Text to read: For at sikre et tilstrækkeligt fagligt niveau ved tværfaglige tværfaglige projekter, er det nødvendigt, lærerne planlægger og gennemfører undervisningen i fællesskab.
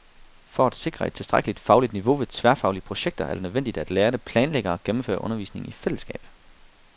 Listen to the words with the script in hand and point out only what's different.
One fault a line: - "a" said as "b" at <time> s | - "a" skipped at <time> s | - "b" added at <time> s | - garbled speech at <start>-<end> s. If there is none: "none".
- "tværfaglige" skipped at 2.8 s
- "at" added at 3.8 s